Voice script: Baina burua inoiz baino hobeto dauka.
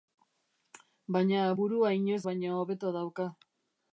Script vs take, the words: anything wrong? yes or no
no